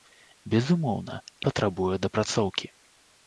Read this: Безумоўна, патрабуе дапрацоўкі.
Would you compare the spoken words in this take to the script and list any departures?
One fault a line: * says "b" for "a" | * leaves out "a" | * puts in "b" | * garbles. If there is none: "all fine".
all fine